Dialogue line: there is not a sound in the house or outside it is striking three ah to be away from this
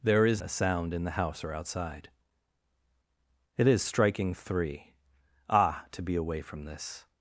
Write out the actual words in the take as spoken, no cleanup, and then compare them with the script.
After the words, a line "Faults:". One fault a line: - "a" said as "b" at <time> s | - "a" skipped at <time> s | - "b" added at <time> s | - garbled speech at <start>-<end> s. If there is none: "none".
there is a sound in the house or outside it is striking three ah to be away from this
Faults:
- "not" skipped at 0.4 s